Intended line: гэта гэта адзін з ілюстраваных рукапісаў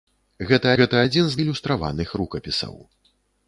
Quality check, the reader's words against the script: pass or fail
pass